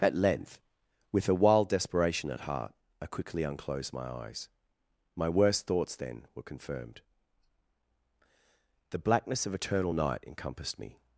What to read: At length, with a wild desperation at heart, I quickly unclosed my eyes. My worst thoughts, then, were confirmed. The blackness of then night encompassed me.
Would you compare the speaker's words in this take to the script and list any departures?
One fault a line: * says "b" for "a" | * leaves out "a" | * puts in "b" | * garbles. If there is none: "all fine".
* says "eternal" for "then"